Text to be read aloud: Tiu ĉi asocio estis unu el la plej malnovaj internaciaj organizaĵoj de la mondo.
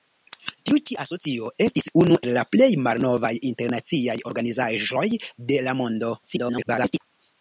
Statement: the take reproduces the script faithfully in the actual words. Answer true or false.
false